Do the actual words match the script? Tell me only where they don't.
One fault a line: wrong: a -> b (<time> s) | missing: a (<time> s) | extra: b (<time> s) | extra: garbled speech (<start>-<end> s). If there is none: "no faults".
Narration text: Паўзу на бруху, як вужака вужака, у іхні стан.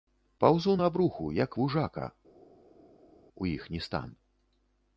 missing: вужака (2.1 s)